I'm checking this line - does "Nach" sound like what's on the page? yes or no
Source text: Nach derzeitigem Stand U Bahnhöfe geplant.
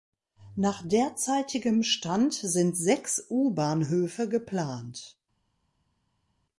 yes